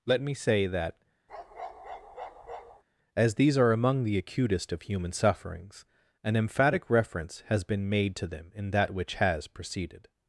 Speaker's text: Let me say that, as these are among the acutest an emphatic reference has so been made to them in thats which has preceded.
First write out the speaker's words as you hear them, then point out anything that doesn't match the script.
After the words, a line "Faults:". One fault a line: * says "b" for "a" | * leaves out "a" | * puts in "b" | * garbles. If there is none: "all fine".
Let me say that, as these are among the acutest of human sufferings, an emphatic reference has been made to them in that which has preceded.
Faults:
* puts in "of human sufferings"
* leaves out "so"
* says "that" for "thats"